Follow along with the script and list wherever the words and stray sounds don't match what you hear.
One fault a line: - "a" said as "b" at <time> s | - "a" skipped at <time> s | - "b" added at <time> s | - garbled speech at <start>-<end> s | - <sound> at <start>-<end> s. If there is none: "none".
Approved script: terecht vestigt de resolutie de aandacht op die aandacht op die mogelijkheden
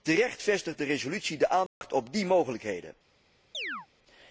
- dropout at 1.7-1.8 s
- "aandacht op die" skipped at 2.3 s
- chirp at 3.5-3.9 s